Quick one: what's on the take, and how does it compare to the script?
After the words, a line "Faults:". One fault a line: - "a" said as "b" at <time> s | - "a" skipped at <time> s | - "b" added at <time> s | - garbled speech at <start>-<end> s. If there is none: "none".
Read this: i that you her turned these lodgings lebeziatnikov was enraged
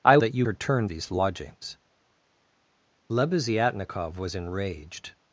i that you her turned these lodgings lebeziatnikov was enraged
Faults:
none